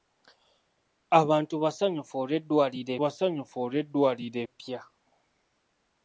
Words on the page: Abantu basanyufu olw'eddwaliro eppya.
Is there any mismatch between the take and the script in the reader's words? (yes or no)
yes